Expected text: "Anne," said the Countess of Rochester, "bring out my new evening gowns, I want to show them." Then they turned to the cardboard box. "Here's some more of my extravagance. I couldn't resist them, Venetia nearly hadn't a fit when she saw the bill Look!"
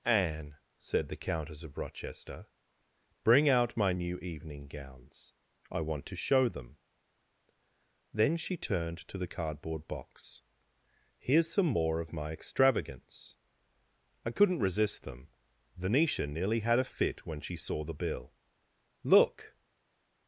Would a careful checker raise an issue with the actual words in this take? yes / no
yes